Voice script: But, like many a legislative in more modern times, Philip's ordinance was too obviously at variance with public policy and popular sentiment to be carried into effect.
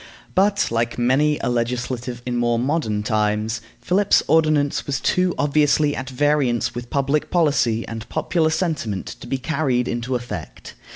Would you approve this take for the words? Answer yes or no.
yes